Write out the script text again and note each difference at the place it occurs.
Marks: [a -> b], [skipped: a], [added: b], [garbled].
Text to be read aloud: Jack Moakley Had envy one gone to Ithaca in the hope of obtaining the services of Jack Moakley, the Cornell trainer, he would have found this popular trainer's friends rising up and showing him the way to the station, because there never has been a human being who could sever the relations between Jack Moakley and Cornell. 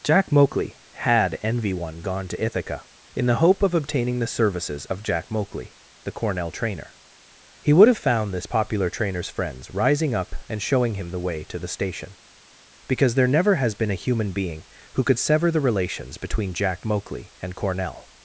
Jack Moakley Had envy one gone to Ithaca in the hope of obtaining the services of Jack Moakley, the Cornell trainer, he would have found this popular trainer's friends rising up and showing him the way to the station, because there never has been a human being who could sever the relations between Jack Moakley and Cornell.